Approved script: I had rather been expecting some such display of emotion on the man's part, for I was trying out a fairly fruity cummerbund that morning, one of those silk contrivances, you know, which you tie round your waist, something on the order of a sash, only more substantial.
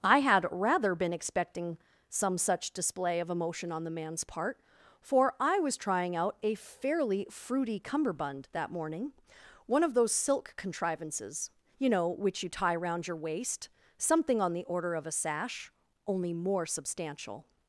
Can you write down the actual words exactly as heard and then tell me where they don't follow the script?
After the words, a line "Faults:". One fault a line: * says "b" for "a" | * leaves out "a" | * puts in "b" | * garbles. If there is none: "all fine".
I had rather been expecting some such display of emotion on the man's part, for I was trying out a fairly fruity cummerbund that morning, one of those silk contrivances, you know, which you tie round your waist, something on the order of a sash, only more substantial.
Faults:
all fine